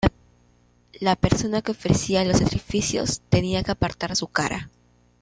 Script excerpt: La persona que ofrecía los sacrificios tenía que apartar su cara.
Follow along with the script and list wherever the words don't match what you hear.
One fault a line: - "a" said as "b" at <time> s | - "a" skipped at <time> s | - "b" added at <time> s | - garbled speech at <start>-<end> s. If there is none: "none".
none